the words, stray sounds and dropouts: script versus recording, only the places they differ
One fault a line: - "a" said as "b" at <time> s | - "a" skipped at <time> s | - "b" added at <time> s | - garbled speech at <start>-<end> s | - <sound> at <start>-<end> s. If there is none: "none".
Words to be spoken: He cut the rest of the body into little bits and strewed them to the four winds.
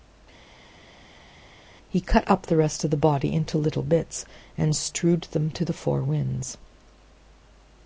- "up" added at 2.3 s